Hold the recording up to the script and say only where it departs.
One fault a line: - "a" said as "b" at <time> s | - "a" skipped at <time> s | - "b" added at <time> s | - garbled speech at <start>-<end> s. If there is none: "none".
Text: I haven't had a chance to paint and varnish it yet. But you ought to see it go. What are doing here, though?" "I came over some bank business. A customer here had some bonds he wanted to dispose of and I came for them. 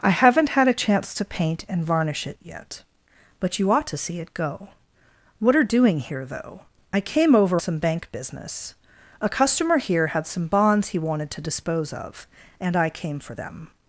none